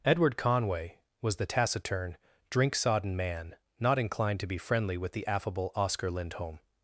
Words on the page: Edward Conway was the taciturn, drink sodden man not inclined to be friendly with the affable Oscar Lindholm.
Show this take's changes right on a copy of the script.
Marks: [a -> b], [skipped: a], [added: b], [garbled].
Edward Conway was the taciturn, drink sodden man not inclined to be friendly with the affable Oscar Lindholm.